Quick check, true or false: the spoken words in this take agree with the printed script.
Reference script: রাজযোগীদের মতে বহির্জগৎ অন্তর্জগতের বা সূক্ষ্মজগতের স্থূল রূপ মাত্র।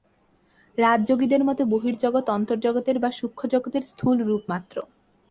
true